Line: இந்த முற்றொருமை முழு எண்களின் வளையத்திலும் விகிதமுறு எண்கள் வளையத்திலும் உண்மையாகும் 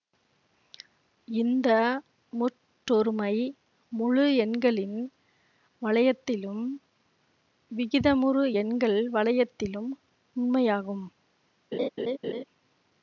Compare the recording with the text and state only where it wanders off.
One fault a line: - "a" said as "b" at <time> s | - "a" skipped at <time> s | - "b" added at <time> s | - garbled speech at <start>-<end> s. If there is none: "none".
none